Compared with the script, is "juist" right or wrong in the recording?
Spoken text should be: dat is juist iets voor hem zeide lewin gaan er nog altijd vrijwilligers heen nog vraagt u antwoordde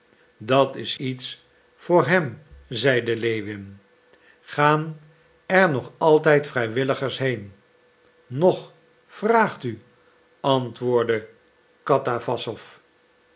wrong